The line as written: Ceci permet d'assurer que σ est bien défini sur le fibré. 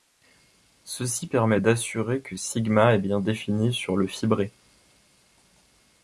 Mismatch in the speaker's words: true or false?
false